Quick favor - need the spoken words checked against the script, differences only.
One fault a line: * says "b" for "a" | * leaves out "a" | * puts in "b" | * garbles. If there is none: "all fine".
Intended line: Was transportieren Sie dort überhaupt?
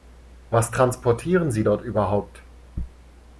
all fine